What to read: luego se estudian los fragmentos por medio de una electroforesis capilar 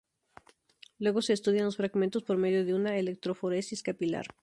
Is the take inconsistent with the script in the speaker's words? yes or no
no